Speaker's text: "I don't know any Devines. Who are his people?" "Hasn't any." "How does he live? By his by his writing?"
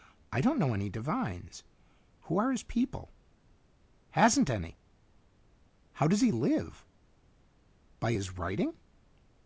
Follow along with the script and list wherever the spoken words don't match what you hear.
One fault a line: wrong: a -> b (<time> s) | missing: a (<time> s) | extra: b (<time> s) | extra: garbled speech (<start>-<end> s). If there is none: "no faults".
missing: by his (8.4 s)